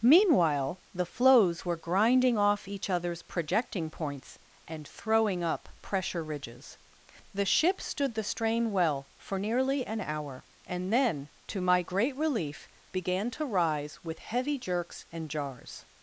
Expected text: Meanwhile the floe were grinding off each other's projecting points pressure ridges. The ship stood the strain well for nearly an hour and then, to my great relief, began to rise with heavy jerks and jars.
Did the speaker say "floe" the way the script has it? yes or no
no